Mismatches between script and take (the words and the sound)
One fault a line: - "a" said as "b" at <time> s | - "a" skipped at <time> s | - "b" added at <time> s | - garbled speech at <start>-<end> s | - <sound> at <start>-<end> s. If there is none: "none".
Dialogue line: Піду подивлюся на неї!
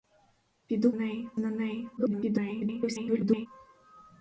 - "подивлюся" said as "неї" at 0.9 s
- garbled speech at 2.0-3.5 s